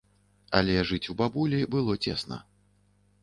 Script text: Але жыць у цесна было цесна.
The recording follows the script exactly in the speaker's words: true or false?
false